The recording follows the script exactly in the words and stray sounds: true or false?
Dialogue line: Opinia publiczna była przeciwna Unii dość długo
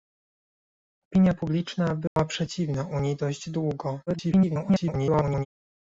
false